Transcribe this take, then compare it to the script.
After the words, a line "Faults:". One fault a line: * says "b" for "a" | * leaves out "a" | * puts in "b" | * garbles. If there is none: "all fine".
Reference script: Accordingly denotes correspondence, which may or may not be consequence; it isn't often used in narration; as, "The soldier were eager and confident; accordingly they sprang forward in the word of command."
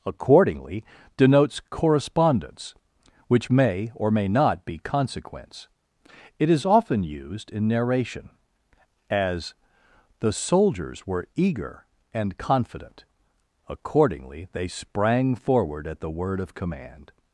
Accordingly denotes correspondence, which may or may not be consequence; it is often used in narration; as, "The soldiers were eager and confident; accordingly they sprang forward at the word of command."
Faults:
* says "is" for "isn't"
* says "soldiers" for "soldier"
* says "at" for "in"